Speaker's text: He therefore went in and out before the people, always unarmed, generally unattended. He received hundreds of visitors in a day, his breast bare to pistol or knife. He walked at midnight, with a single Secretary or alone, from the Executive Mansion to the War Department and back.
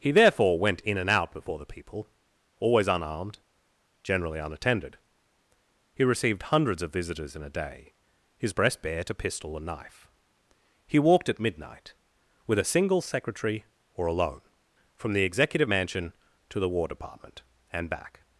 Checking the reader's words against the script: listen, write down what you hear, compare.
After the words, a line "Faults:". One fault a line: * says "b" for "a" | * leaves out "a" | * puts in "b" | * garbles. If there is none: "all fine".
He therefore went in and out before the people, always unarmed, generally unattended. He received hundreds of visitors in a day, his breast bare to pistol and knife. He walked at midnight, with a single Secretary or alone, from the Executive Mansion to the War Department and back.
Faults:
* says "and" for "or"